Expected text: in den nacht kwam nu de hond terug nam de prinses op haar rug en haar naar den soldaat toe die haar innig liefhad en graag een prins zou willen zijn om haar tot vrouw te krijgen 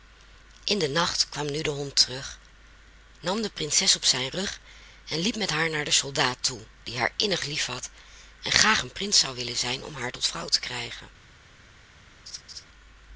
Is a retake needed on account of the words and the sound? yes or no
yes